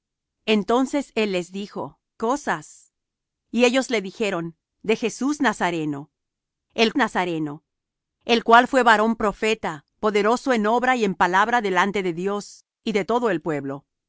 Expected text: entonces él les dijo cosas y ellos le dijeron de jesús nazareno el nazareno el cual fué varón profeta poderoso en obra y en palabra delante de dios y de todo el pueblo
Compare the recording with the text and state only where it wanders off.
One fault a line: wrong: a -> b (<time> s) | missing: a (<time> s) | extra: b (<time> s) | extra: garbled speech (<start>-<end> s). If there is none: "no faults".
no faults